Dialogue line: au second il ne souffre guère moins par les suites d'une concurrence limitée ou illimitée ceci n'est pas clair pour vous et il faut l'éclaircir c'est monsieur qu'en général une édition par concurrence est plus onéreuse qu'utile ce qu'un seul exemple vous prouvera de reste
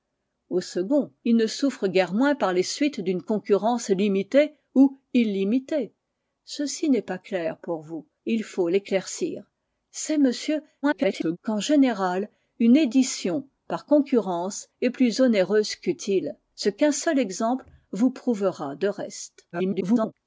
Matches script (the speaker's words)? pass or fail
fail